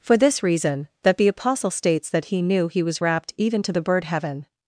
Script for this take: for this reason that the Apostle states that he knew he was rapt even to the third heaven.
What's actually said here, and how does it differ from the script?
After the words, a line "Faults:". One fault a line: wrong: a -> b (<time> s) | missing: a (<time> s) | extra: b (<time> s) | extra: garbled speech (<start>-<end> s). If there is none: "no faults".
for this reason that the Apostle states that he knew he was rapt even to the bird heaven.
Faults:
wrong: third -> bird (3.8 s)